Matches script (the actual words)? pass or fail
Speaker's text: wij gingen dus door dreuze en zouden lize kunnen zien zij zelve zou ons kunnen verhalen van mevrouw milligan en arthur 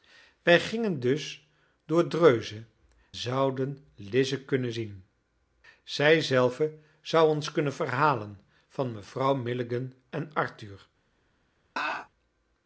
fail